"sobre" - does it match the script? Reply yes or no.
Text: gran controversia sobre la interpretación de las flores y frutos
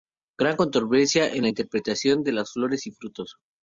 no